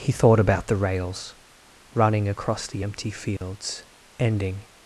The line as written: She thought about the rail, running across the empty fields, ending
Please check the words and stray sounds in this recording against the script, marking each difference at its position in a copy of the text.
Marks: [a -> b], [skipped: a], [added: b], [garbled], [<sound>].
[She -> He] thought about the [rail, -> rails] running across the empty fields, [dropout] ending